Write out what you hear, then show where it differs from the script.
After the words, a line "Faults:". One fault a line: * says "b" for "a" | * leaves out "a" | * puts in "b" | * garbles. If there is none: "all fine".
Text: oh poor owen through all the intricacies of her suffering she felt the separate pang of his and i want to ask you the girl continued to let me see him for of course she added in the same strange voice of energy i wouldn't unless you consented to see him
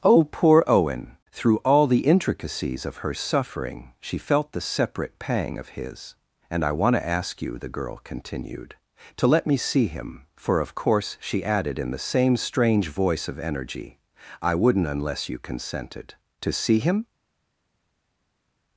oh poor owen through all the intricacies of her suffering she felt the separate pang of his and i want to ask you the girl continued to let me see him for of course she added in the same strange voice of energy i wouldn't unless you consented to see him
Faults:
all fine